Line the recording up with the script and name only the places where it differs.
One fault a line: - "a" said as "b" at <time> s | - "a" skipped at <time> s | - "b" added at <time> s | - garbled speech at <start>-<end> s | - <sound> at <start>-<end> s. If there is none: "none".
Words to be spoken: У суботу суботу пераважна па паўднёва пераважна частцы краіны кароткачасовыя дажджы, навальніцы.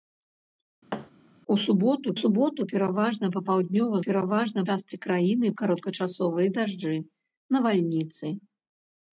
- thud at 0.9-1.1 s